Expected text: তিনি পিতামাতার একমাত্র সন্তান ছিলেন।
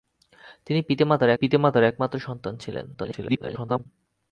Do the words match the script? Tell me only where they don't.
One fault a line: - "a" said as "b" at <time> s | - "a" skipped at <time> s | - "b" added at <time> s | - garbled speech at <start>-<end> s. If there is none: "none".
- "পিতামাতার" added at 1.3 s
- garbled speech at 2.9-3.9 s